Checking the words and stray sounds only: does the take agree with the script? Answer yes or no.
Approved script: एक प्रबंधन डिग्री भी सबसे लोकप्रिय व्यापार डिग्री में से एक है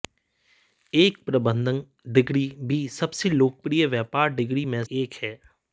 no